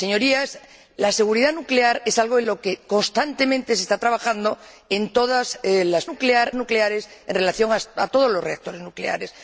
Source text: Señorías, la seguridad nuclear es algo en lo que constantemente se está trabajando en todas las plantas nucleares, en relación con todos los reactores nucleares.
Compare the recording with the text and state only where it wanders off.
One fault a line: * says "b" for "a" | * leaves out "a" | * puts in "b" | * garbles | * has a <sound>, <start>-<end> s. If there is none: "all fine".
* says "nuclear" for "plantas"